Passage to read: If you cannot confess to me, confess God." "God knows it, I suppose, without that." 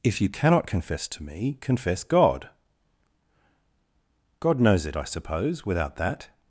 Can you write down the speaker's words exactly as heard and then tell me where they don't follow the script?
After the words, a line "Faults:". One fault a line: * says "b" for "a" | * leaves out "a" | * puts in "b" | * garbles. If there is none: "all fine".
If you cannot confess to me, confess God." "God knows it, I suppose, without that."
Faults:
all fine